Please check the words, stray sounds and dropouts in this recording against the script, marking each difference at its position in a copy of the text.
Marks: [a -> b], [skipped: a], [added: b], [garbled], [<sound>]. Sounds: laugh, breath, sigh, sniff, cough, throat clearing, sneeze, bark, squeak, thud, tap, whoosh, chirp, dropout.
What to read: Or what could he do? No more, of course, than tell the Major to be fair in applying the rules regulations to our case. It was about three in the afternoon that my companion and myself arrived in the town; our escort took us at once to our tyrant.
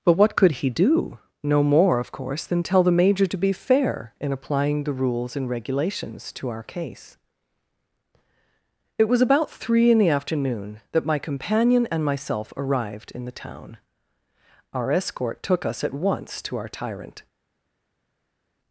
[Or -> But] what could he do? No more, of course, than tell the Major to be fair in applying the rules [added: and] regulations to our case. It was about three in the afternoon that my companion and myself arrived in the town; our escort took us at once to our tyrant.